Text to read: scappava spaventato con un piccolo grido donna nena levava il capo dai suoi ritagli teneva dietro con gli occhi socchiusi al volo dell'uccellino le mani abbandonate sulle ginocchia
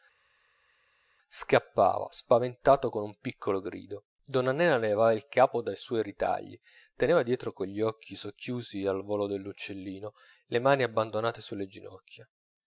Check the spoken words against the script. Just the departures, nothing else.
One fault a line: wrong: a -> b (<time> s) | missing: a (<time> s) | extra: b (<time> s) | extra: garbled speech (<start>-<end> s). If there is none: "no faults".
no faults